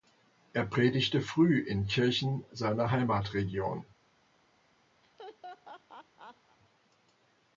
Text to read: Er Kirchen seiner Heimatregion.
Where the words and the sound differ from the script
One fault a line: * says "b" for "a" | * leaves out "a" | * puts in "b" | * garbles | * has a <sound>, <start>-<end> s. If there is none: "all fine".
* puts in "predigte früh in"
* has a laugh, 5.0-6.6 s